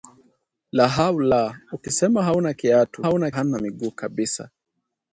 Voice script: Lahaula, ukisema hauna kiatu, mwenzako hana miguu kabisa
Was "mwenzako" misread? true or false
true